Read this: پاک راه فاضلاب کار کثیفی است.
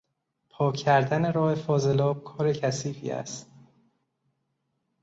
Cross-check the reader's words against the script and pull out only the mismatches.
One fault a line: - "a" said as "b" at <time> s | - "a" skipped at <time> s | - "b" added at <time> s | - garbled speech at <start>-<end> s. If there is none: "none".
- "کردن" added at 0.8 s